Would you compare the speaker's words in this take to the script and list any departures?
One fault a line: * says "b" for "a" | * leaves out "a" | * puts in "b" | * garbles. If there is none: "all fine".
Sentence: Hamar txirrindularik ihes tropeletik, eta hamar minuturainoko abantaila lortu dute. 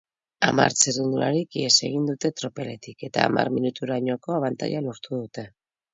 * puts in "egin dute"